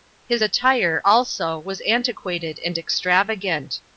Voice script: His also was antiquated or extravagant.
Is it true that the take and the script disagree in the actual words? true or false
true